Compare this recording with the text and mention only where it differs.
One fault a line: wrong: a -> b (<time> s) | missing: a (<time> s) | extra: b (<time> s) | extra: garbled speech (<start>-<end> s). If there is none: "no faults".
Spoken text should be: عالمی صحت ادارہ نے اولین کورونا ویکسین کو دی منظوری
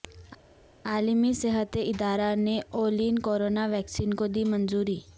no faults